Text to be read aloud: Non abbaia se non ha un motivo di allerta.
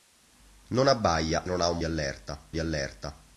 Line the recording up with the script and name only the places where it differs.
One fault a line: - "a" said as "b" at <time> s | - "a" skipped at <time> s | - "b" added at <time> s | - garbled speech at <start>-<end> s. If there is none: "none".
- "se" skipped at 1.5 s
- "motivo" said as "allerta" at 1.8 s